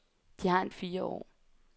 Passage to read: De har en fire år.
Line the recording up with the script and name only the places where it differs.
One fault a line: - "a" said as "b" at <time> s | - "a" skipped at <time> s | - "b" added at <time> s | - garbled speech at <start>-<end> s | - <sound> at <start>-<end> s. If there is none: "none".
none